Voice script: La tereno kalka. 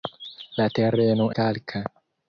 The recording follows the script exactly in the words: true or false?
true